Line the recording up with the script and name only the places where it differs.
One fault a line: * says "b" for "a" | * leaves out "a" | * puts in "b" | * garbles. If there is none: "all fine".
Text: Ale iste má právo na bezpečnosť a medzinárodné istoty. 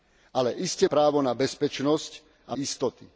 * leaves out "má"
* leaves out "medzinárodné"